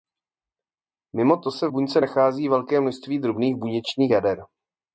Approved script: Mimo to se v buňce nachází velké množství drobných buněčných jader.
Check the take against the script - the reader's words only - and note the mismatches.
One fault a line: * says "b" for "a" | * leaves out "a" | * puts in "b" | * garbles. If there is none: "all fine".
all fine